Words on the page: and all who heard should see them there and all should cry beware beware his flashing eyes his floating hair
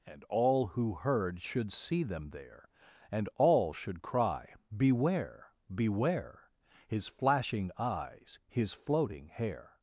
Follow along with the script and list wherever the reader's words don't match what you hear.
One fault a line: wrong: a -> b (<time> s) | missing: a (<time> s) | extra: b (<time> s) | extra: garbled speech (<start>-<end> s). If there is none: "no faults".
no faults